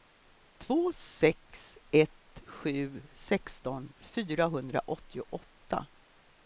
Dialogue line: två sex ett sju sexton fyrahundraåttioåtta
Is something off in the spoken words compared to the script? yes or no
no